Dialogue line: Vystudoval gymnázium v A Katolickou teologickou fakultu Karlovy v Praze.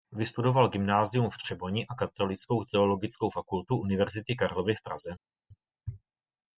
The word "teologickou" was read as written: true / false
true